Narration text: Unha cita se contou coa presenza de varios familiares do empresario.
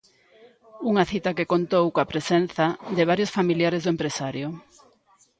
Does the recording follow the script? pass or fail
fail